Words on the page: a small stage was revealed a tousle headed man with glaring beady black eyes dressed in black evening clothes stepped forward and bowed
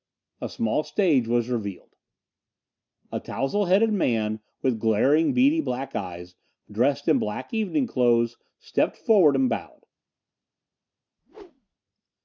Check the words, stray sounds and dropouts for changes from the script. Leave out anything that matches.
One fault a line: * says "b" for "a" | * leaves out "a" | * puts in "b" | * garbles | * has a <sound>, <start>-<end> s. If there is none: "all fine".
* has a whoosh, 11.2-11.8 s